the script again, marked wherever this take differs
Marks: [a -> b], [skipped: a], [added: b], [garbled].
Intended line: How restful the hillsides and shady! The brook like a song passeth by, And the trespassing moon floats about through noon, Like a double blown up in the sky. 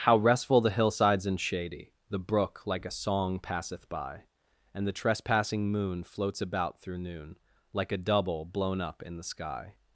How restful the hillsides and shady! The brook like a song passeth by, And the trespassing moon floats about through noon, Like a double blown up in the sky.